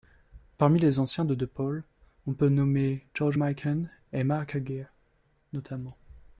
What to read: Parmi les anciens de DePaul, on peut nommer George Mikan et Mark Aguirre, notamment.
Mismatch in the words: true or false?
false